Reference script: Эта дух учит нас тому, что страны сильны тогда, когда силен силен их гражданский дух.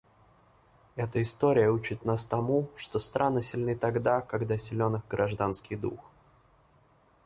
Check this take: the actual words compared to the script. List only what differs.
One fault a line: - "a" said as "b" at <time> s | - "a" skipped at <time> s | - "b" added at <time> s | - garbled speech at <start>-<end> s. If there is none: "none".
- "дух" said as "история" at 1.2 s
- "силен" skipped at 5.0 s